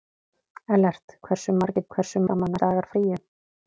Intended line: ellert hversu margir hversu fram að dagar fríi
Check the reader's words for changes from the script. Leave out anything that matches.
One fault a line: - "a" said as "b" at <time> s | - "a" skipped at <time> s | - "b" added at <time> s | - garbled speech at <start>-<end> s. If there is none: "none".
none